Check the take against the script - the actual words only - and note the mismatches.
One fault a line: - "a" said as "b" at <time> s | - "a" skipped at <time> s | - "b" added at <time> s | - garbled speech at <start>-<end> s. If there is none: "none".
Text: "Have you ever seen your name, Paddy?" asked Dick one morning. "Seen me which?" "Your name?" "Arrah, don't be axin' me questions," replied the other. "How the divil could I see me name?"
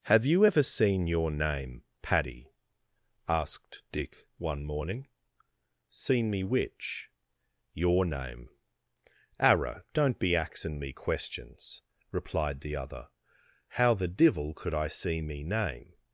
none